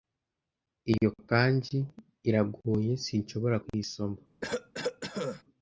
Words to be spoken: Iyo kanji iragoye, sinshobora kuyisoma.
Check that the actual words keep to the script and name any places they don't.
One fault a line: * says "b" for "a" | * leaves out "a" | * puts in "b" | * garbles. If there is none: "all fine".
all fine